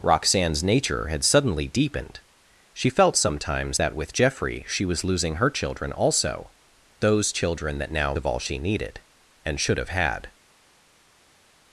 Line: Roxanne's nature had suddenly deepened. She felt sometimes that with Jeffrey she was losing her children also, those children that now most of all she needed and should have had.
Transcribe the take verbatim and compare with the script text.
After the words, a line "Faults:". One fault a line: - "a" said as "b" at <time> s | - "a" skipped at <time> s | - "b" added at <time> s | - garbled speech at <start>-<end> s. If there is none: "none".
Roxanne's nature had suddenly deepened. She felt sometimes that with Jeffrey she was losing her children also, those children that now of all she needed and should have had.
Faults:
- "most" skipped at 8.1 s